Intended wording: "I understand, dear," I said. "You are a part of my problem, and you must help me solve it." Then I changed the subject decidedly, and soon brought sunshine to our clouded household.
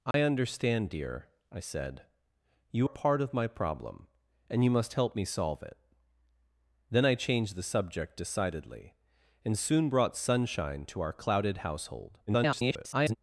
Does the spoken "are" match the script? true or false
false